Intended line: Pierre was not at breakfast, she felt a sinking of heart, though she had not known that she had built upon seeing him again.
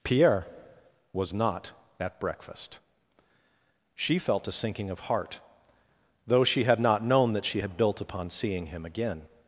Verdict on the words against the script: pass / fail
pass